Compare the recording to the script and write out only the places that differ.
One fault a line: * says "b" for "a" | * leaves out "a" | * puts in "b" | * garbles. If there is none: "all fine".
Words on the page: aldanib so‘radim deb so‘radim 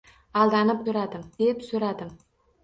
all fine